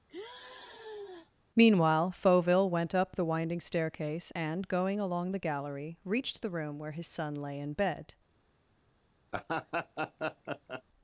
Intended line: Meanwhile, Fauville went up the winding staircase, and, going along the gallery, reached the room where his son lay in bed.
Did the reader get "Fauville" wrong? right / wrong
right